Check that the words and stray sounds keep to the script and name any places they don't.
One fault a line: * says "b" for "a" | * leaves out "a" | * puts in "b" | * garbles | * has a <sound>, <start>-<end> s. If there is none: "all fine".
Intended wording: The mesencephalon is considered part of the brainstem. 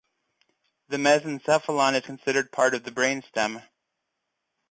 all fine